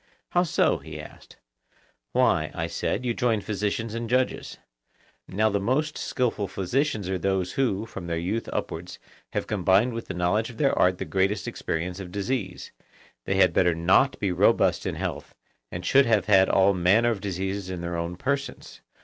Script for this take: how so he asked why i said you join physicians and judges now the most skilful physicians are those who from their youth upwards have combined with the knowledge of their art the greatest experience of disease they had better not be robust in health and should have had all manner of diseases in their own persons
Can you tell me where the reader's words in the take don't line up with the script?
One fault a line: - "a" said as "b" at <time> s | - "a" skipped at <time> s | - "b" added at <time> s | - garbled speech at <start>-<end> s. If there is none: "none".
none